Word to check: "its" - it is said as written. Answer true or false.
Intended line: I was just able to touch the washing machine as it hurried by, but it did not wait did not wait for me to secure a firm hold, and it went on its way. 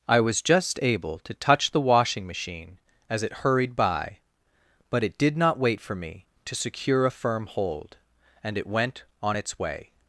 true